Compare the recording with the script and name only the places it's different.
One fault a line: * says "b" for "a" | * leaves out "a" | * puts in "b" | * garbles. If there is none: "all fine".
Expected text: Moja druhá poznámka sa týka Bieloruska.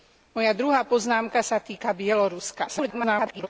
* garbles